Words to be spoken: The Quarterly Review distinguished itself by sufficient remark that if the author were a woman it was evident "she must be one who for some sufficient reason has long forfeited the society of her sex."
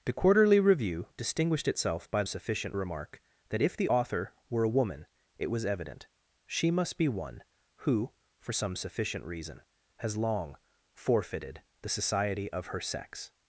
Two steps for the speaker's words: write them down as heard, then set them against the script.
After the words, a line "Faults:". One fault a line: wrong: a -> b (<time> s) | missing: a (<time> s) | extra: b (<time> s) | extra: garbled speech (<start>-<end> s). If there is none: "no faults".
The Quarterly Review distinguished itself by sufficient remark that if the author were a woman it was evident "she must be one who for some sufficient reason has long forfeited the society of her sex."
Faults:
no faults